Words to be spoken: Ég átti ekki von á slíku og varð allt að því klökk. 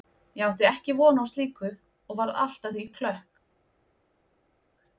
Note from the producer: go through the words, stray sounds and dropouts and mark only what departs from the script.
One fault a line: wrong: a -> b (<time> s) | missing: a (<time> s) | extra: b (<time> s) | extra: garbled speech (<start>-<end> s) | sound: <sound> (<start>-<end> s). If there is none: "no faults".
no faults